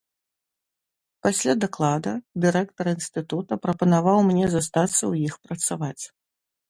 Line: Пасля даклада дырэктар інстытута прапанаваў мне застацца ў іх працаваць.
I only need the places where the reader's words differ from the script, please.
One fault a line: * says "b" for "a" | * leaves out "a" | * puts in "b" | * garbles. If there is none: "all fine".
all fine